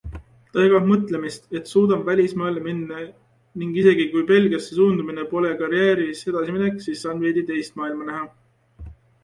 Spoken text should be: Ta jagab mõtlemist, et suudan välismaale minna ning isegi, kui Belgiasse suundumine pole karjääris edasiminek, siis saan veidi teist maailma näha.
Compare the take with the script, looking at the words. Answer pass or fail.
pass